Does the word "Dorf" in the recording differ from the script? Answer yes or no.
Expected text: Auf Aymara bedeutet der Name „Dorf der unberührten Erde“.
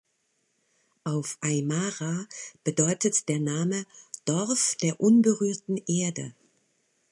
no